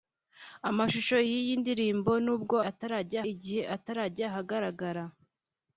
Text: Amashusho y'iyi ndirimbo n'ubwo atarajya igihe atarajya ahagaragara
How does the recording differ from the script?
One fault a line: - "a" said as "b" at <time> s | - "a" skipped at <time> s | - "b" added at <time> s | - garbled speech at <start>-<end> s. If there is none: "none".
none